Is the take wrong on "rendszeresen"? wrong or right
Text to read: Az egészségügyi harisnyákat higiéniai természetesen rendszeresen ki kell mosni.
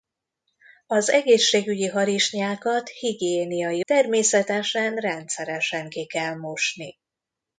right